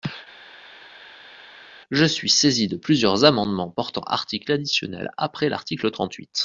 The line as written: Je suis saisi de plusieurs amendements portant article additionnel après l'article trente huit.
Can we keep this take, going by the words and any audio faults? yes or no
yes